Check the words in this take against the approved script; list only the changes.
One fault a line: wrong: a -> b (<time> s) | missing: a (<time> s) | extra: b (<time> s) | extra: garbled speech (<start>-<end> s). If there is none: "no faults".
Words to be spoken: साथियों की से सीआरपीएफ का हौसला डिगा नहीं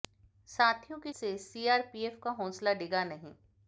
no faults